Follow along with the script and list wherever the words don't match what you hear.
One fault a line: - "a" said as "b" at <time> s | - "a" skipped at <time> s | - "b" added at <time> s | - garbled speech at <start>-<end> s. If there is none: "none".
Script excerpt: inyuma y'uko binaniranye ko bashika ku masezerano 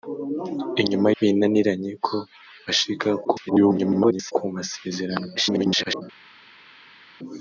- "y'uko" skipped at 1.1 s
- garbled speech at 3.2-4.3 s
- garbled speech at 5.4-6.0 s